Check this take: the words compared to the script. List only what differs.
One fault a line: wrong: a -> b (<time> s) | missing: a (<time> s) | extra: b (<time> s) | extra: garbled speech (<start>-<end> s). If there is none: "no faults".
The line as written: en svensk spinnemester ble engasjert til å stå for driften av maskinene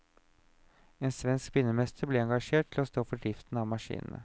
no faults